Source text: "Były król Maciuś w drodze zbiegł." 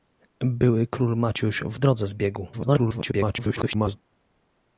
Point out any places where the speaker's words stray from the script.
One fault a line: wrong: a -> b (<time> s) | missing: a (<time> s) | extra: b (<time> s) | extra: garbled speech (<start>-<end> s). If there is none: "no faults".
extra: garbled speech (2.5-4.0 s)